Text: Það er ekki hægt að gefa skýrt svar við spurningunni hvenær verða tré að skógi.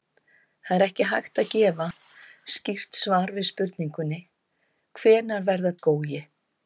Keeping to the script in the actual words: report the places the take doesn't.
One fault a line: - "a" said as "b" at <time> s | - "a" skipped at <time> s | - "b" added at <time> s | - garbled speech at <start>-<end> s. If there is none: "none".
- "tré að" skipped at 5.8 s